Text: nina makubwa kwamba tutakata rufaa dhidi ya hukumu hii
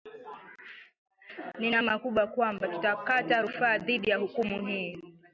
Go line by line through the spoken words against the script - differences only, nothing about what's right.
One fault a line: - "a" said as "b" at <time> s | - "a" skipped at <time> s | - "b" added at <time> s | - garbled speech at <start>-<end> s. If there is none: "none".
none